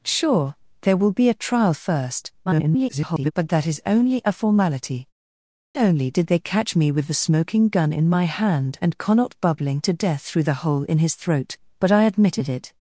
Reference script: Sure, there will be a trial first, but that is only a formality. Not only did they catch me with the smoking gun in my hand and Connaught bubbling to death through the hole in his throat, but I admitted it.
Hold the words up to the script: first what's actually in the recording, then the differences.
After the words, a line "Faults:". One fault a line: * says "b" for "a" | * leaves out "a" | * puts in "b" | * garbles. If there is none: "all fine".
Sure, there will be a trial first, [garbled] but that is only a formality. Only did they catch me with the smoking gun in my hand and Connaught bubbling to death through the hole in his throat, but I admitted it.
Faults:
* garbles
* leaves out "Not"